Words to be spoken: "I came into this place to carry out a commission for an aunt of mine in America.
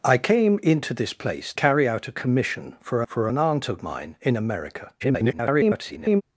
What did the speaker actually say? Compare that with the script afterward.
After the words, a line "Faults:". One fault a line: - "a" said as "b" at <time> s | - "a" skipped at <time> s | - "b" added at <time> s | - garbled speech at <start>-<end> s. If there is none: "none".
"I came into this place carry out a commission for for an aunt of mine in America. [garbled]
Faults:
- "to" skipped at 1.5 s
- "for" added at 3.1 s
- garbled speech at 5.0-6.2 s